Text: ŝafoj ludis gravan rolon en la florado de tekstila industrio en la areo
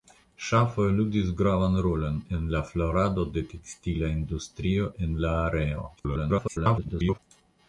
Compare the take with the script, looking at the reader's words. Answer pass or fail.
fail